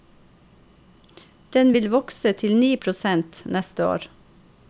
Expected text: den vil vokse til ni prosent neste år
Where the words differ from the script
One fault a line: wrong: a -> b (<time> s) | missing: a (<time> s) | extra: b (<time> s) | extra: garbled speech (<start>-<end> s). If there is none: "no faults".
no faults